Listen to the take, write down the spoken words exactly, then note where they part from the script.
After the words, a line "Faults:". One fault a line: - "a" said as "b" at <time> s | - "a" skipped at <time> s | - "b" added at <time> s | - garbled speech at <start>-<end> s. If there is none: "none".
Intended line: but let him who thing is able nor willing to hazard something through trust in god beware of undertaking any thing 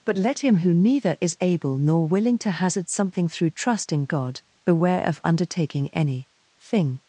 but let him who neither is able nor willing to hazard something through trust in god beware of undertaking any thing
Faults:
- "thing" said as "neither" at 0.7 s